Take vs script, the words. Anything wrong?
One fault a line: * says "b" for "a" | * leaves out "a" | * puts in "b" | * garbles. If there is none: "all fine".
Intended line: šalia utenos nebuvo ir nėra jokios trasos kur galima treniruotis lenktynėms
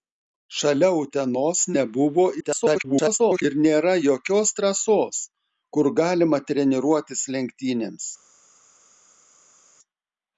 * garbles